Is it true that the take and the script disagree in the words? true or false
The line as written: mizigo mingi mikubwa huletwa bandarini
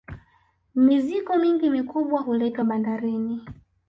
false